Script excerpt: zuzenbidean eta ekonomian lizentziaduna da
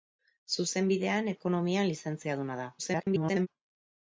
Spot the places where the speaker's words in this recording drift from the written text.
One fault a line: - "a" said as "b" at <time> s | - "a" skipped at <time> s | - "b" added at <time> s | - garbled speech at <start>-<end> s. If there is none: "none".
- "eta" skipped at 1.3 s
- garbled speech at 2.8-3.5 s